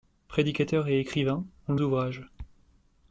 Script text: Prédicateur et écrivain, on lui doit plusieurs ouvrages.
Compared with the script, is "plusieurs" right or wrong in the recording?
wrong